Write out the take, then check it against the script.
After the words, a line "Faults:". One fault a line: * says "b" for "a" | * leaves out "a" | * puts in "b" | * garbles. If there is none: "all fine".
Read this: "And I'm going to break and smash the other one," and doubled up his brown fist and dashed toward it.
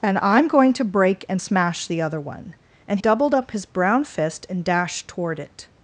"And I'm going to break and smash the other one," and doubled up his brown fist and dashed toward it.
Faults:
all fine